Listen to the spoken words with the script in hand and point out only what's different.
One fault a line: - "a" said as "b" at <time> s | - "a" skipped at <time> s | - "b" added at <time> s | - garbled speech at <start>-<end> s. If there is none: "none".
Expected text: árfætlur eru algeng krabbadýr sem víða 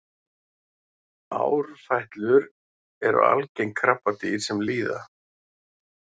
none